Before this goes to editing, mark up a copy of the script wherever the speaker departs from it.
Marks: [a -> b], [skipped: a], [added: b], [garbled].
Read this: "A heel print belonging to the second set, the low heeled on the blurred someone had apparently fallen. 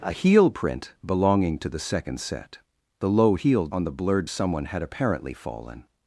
"A heel print belonging to the second set, the low heeled on the blurred someone had apparently fallen.